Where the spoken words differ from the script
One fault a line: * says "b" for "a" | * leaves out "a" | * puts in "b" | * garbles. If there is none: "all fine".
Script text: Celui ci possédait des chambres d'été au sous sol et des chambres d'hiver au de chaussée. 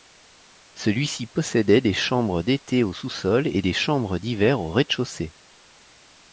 * puts in "rez"